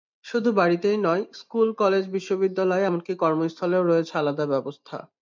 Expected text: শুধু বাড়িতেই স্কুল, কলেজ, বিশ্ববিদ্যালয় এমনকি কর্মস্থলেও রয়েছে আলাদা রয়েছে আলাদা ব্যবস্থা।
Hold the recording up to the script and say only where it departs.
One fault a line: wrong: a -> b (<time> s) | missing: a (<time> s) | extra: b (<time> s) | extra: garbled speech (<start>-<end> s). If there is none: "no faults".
extra: নয় (1.0 s)
missing: রয়েছে আলাদা (4.4 s)